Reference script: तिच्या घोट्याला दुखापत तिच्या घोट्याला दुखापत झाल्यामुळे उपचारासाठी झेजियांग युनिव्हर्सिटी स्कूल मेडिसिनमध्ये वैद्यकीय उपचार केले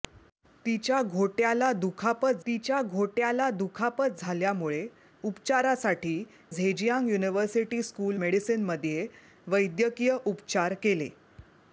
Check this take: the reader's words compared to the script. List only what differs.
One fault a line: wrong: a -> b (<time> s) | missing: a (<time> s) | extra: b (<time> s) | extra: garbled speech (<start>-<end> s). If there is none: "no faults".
no faults